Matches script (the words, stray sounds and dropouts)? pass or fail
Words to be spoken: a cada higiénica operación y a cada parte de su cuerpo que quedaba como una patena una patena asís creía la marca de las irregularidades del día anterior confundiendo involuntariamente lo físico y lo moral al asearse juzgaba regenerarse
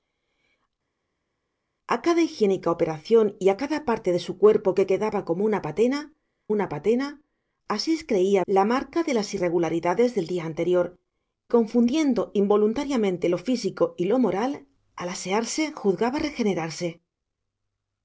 pass